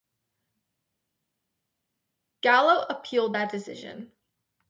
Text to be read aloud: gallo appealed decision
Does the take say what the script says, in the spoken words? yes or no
no